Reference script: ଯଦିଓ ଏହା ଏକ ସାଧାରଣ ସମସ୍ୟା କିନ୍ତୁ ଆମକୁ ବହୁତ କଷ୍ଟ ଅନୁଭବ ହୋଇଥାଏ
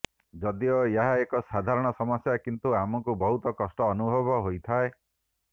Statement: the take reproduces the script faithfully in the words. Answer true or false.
true